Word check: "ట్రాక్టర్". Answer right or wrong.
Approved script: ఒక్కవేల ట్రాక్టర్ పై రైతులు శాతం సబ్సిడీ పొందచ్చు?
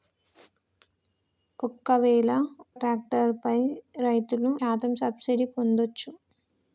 right